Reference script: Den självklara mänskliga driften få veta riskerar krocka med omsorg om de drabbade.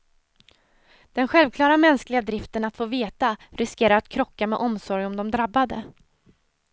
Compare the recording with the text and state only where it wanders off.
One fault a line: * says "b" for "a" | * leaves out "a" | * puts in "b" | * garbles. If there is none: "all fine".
* puts in "att"
* puts in "att"